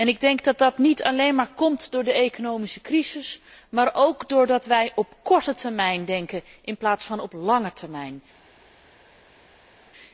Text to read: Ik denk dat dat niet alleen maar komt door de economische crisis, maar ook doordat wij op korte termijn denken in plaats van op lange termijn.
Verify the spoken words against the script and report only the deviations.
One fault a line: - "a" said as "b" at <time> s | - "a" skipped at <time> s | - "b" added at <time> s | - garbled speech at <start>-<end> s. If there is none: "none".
none